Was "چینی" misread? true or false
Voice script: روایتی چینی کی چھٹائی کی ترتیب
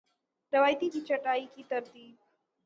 true